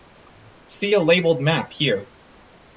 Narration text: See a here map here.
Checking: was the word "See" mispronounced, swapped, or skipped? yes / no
no